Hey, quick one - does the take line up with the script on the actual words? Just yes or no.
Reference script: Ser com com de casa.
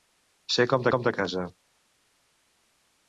yes